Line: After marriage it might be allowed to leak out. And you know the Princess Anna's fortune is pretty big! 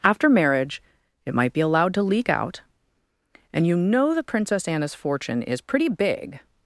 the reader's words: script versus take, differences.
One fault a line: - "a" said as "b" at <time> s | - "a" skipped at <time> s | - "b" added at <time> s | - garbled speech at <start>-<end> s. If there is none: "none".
none